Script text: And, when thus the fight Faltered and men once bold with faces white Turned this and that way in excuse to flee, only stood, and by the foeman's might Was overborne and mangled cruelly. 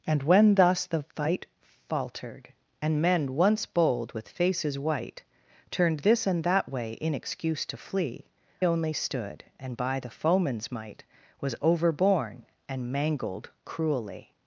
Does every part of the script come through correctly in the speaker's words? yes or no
yes